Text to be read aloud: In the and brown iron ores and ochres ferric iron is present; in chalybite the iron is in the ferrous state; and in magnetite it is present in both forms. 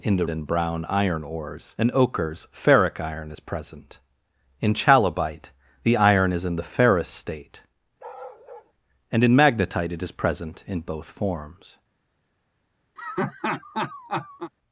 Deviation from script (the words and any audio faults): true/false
true